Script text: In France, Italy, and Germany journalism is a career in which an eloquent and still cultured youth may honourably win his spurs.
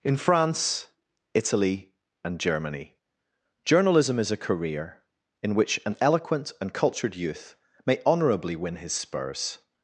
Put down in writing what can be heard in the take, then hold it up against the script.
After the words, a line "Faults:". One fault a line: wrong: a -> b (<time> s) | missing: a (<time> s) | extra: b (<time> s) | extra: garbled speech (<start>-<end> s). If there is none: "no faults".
In France, Italy, and Germany journalism is a career in which an eloquent and cultured youth may honourably win his spurs.
Faults:
missing: still (6.7 s)